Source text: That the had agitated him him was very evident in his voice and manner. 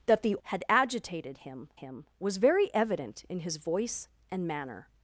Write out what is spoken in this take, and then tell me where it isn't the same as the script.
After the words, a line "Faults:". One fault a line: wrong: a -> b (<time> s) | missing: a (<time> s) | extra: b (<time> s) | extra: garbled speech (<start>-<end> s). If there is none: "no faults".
That the had agitated him him was very evident in his voice and manner.
Faults:
no faults